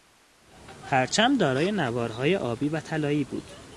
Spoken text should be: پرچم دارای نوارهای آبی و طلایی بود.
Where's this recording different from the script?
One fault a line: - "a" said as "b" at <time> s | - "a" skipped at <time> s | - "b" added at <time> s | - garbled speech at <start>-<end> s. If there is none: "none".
none